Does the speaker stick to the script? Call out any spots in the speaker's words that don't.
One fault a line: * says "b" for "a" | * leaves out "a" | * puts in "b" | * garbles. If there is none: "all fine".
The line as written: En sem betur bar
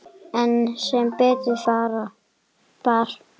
all fine